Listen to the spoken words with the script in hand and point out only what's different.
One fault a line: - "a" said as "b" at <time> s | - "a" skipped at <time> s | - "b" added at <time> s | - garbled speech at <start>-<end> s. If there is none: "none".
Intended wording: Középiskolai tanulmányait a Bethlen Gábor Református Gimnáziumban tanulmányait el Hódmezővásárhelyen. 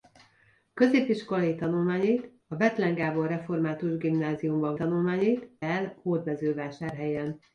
none